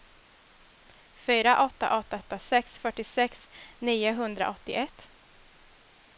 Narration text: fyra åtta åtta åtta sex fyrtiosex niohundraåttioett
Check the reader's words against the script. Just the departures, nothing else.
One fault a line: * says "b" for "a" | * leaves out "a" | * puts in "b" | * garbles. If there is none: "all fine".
all fine